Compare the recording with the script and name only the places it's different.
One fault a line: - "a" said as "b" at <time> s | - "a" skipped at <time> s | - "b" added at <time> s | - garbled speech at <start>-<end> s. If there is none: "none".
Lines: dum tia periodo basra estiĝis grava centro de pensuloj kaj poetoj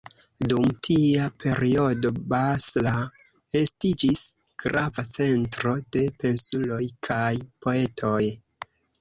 none